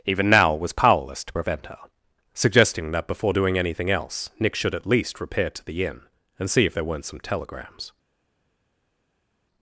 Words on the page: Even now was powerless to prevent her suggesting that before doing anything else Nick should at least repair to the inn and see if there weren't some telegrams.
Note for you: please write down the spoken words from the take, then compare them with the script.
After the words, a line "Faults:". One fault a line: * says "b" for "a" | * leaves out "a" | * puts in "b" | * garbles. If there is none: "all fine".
Even now was powerless to prevent her suggesting that before doing anything else Nick should at least repair to the inn and see if there weren't some telegrams.
Faults:
all fine